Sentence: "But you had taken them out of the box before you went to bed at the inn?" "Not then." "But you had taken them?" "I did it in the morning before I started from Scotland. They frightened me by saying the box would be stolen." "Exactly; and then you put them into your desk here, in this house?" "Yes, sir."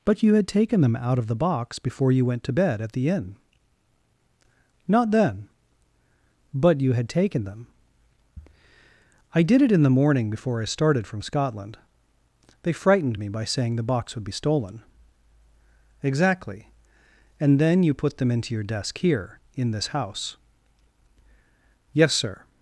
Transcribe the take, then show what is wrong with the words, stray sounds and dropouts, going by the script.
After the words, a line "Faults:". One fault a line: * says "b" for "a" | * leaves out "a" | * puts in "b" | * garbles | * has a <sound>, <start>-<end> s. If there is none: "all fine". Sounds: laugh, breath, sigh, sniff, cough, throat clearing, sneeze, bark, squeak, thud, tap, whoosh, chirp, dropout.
"But you had taken them out of the box before you went to bed at the inn?" "Not then." "But you had taken them?" "I did it in the morning before I started from Scotland. They frightened me by saying the box would be stolen." "Exactly; and then you put them into your desk here, in this house?" "Yes, sir."
Faults:
all fine